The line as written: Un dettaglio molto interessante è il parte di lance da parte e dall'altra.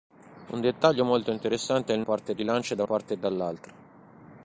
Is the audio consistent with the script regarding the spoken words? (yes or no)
yes